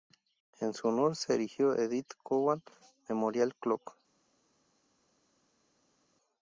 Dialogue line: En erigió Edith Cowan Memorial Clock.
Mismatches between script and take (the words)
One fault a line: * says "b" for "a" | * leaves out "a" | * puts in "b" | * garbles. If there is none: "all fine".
* puts in "su honor se"